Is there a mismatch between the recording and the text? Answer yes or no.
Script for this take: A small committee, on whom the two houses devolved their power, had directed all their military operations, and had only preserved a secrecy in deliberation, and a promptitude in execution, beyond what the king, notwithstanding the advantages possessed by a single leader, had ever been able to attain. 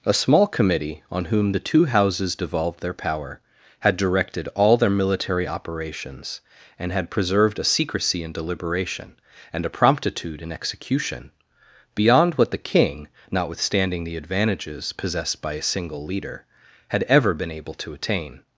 yes